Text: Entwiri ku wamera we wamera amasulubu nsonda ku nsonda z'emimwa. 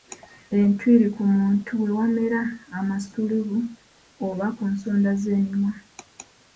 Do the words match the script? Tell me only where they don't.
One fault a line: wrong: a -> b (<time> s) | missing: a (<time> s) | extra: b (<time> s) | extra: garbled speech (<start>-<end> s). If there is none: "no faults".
wrong: wamera -> muntu (1.4 s)
wrong: nsonda -> oba (4.3 s)